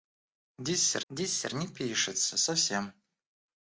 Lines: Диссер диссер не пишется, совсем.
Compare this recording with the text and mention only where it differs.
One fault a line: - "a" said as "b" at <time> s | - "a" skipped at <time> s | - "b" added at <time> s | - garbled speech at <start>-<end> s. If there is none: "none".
none